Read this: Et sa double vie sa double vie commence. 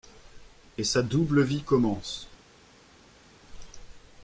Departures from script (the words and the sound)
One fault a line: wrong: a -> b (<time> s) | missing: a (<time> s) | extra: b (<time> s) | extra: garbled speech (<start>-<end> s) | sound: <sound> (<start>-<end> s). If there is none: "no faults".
missing: sa double vie (1.6 s)